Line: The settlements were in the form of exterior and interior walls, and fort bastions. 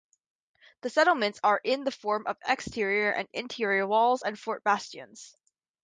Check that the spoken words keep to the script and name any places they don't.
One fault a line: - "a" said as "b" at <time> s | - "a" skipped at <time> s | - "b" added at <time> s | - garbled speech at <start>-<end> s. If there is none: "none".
- "were" said as "are" at 1.4 s